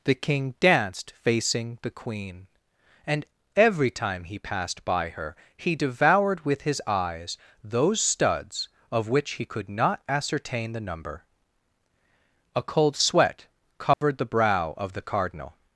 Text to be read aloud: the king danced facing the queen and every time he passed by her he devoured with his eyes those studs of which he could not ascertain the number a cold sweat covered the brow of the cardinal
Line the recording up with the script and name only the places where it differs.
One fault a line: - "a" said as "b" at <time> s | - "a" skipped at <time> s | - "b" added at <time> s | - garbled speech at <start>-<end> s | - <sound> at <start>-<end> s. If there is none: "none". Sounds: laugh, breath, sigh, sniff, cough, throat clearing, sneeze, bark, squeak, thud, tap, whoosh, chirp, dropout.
- dropout at 13.9-14.0 s